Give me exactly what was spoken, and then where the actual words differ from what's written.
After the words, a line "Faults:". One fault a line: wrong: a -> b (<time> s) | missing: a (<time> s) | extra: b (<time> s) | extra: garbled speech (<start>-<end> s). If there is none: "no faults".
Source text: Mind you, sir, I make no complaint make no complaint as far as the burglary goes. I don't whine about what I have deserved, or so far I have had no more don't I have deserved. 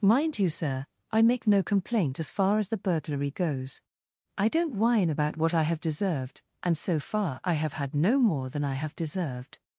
Mind you, sir, I make no complaint as far as the burglary goes. I don't whine about what I have deserved, and so far I have had no more than I have deserved.
Faults:
missing: make no complaint (2.2 s)
wrong: or -> and (6.6 s)
wrong: don't -> than (8.5 s)